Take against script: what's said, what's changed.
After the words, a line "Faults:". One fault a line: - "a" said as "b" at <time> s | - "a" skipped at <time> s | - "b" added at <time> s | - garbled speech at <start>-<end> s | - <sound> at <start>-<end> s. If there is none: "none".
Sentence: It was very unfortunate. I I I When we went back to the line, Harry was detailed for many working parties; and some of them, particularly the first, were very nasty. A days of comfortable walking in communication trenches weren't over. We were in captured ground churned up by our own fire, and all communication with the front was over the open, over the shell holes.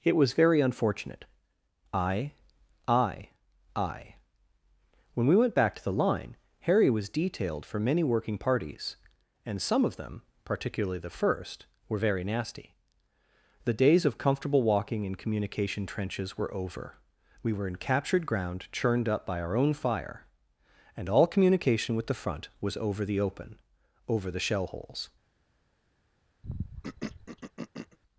It was very unfortunate. I I I When we went back to the line, Harry was detailed for many working parties; and some of them, particularly the first, were very nasty. The days of comfortable walking in communication trenches were over. We were in captured ground churned up by our own fire, and all communication with the front was over the open, over the shell holes.
Faults:
- "A" said as "The" at 13.7 s
- "weren't" said as "were" at 16.4 s
- throat clearing at 26.4-28.0 s